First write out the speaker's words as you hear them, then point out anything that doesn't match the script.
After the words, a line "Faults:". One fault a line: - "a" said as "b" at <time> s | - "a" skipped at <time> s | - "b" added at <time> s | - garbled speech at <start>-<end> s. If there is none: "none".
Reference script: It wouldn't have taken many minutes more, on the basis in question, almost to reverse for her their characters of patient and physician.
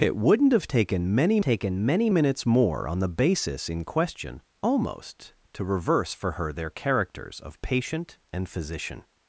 It wouldn't have taken many taken many minutes more, on the basis in question, almost to reverse for her their characters of patient and physician.
Faults:
- "taken many" added at 1.4 s